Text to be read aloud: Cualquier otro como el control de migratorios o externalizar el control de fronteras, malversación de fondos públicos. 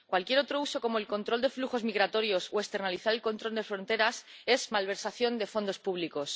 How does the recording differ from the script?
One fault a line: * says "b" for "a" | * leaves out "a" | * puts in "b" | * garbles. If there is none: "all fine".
* puts in "uso"
* puts in "flujos"
* puts in "es"